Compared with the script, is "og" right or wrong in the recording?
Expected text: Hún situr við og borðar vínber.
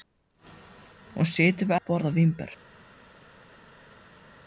right